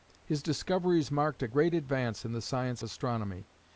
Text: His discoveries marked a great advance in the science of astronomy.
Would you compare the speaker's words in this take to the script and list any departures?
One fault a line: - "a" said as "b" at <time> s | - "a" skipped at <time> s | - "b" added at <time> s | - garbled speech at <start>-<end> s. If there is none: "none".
- "of" skipped at 2.8 s